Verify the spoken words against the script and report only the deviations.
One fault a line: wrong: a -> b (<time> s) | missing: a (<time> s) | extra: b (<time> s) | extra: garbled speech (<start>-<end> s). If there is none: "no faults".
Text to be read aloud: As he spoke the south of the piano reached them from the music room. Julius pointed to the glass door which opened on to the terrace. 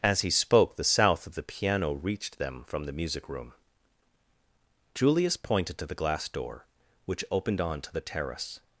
no faults